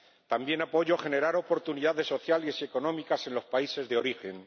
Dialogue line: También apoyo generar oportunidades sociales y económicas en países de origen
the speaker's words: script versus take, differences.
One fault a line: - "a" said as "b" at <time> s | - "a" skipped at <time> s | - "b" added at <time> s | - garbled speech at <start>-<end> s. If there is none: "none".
- "los" added at 3.3 s